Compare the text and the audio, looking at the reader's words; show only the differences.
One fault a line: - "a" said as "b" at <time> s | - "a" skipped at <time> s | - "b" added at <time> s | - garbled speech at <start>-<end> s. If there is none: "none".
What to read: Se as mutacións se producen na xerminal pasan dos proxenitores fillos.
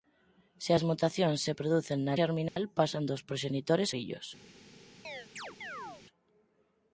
none